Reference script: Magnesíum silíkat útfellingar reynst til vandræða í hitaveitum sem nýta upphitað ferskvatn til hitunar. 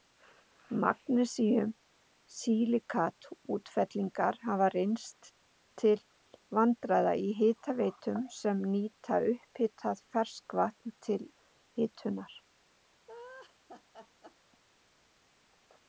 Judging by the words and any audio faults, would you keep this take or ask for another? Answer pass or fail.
fail